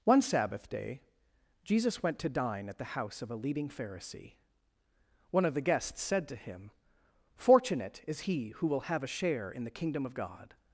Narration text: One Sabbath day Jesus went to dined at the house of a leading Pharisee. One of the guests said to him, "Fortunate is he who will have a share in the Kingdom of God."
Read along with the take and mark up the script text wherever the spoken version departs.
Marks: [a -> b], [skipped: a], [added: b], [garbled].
One Sabbath day Jesus went to [dined -> dine] at the house of a leading Pharisee. One of the guests said to him, "Fortunate is he who will have a share in the Kingdom of God."